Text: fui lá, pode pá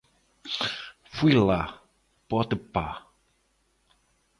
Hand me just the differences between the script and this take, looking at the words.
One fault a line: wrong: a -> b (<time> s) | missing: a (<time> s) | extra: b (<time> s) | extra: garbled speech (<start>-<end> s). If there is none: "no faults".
no faults